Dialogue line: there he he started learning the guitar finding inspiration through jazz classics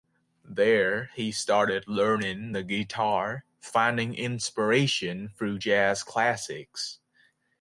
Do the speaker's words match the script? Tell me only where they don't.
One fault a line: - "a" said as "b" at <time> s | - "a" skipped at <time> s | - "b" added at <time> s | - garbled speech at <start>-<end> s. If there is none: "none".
- "he" skipped at 1.3 s